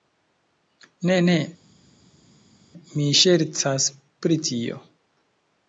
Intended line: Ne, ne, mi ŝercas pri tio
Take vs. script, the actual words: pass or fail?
pass